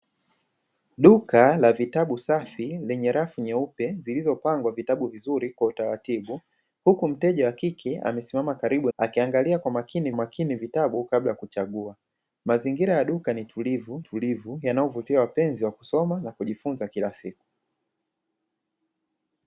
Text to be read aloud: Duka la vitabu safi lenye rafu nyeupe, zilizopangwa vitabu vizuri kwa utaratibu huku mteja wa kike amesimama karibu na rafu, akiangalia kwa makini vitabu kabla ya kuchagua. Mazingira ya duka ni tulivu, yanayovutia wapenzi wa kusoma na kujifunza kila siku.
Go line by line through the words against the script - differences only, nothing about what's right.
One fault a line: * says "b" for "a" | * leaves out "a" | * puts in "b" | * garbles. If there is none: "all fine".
* leaves out "na rafu"
* puts in "makini"
* puts in "tulivu"